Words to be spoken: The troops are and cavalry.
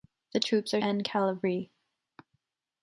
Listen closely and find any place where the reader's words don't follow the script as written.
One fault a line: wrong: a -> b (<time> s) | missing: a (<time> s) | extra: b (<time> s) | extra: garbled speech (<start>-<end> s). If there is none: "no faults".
no faults